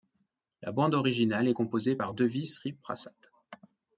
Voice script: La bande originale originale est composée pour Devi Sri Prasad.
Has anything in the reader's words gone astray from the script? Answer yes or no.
yes